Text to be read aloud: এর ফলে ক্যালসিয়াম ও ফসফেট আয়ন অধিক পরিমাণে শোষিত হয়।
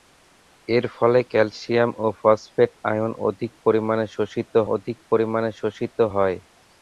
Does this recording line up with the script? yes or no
no